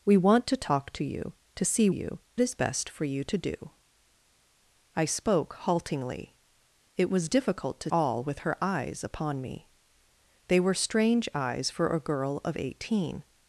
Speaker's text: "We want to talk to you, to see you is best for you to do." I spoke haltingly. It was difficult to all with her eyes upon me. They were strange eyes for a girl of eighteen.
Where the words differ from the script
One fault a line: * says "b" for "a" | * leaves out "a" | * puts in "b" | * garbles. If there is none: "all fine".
all fine